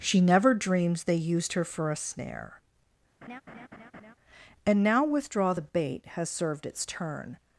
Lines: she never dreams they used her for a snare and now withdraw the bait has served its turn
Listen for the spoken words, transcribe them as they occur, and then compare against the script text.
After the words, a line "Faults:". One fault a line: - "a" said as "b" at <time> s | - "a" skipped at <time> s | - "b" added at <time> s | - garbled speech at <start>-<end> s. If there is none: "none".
she never dreams they used her for a snare and now withdraw the bait has served its turn
Faults:
none